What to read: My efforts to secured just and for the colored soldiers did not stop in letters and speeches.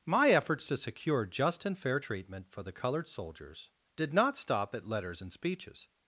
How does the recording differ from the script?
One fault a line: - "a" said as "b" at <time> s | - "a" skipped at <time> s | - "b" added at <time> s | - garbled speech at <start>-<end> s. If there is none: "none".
- "secured" said as "secure" at 0.8 s
- "fair treatment" added at 1.8 s
- "in" said as "at" at 4.7 s